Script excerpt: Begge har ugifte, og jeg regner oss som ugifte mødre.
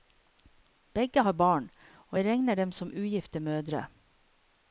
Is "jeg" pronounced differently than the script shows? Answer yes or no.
no